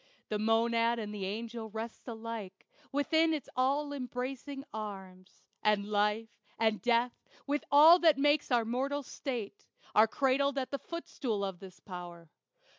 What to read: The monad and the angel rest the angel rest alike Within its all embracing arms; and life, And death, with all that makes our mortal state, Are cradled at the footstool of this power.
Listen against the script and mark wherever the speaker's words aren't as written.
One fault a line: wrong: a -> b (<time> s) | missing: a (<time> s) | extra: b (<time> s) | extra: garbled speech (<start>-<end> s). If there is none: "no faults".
missing: the angel rest (2.1 s)